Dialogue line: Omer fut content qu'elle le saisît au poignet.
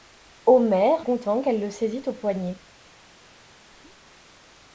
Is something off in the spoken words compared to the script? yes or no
yes